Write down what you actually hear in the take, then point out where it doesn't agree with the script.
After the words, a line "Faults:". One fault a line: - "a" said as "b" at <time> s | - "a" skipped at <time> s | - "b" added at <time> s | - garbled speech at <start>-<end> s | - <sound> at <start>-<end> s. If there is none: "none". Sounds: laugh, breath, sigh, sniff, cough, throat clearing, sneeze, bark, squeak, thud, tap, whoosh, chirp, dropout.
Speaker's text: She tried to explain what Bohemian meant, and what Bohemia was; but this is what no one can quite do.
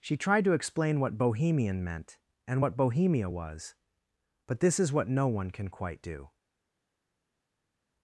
She tried to explain what Bohemian meant, and what Bohemia was; but this is what no one can quite do.
Faults:
none